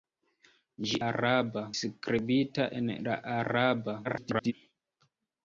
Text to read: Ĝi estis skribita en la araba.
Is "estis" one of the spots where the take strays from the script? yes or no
yes